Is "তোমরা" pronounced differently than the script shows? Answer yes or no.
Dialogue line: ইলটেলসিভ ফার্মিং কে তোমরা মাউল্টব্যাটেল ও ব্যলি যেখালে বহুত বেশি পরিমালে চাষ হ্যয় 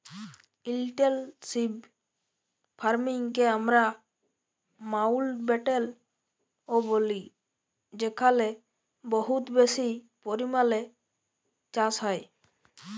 yes